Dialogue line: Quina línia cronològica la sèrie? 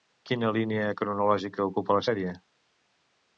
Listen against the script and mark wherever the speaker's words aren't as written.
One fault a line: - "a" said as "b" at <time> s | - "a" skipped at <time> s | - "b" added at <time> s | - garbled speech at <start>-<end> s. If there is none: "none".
- "ocupa" added at 1.7 s